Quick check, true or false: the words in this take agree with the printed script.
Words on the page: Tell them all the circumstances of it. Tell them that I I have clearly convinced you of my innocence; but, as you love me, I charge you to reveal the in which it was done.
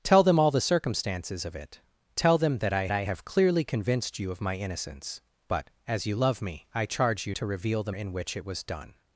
true